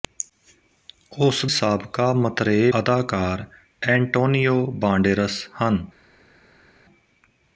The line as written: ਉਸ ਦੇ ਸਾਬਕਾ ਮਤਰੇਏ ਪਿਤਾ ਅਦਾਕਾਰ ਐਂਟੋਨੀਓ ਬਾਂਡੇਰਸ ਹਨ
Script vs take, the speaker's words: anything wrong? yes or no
yes